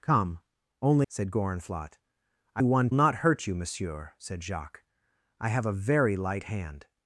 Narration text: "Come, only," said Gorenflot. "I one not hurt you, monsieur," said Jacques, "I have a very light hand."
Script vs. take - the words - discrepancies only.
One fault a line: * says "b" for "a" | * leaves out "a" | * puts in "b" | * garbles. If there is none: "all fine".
all fine